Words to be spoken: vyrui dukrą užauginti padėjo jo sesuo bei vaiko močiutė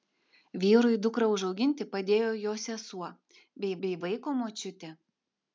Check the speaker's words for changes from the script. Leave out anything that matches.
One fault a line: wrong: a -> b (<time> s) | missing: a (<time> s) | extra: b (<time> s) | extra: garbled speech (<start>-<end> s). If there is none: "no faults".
extra: bei (3.9 s)